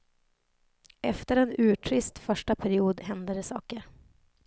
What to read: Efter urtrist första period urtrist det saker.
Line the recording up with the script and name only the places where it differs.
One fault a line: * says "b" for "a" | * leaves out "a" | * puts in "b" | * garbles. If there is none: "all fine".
* puts in "en"
* says "hände" for "urtrist"